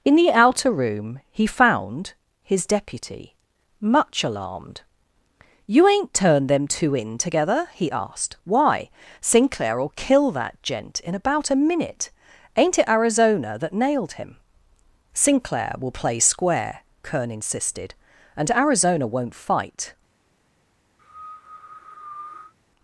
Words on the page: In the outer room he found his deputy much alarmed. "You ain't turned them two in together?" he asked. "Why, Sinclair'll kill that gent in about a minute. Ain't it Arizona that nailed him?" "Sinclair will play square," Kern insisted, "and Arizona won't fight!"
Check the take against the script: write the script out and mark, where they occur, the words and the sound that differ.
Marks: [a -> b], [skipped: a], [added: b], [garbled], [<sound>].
In the outer room he found his deputy much alarmed. "You ain't turned them two in together?" he asked. "Why, Sinclair'll kill that gent in about a minute. Ain't it Arizona that nailed him?" "Sinclair will play square," Kern insisted, "and Arizona won't fight!" [cough]